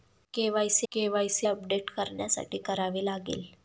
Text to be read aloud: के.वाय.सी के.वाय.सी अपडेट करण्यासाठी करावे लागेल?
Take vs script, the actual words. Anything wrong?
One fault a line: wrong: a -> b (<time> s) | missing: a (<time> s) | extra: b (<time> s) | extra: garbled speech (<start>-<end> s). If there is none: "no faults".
no faults